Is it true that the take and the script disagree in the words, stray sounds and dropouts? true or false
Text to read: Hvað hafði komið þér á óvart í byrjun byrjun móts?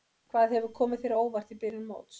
true